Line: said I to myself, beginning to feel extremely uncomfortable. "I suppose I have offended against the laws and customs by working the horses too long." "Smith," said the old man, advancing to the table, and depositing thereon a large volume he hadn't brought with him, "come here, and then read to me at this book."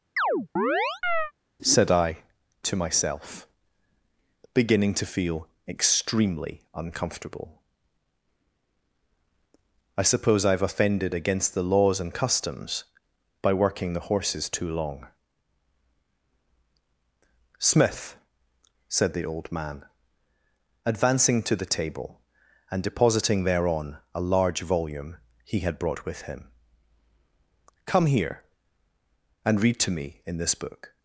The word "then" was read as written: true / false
false